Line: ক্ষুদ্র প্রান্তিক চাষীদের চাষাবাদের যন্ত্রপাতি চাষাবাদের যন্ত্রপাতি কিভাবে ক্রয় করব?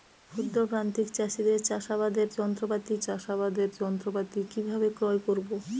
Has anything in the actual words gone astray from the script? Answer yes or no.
no